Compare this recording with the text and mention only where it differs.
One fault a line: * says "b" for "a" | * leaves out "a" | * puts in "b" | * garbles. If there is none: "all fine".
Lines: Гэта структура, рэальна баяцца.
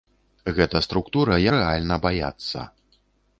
all fine